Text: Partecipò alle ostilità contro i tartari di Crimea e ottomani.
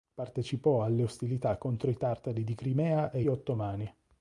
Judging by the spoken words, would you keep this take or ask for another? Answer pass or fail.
pass